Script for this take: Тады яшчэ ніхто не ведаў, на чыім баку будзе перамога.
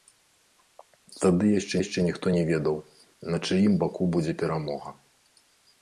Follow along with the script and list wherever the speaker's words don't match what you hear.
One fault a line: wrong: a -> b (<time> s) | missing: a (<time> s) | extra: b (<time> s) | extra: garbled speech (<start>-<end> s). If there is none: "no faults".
extra: яшчэ (1.8 s)